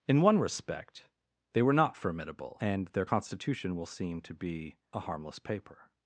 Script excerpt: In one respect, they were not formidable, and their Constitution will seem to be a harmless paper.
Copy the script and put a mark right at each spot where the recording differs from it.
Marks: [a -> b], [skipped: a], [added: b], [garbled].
In one respect, they were not formidable, and their Constitution will seem to be a harmless paper.